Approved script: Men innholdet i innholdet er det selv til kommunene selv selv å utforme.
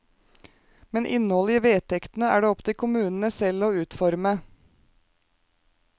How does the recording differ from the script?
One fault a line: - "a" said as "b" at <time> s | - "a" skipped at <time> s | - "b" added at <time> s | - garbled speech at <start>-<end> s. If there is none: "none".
- "innholdet" said as "vedtektene" at 1.6 s
- "selv" said as "opp" at 2.5 s
- "selv" skipped at 3.7 s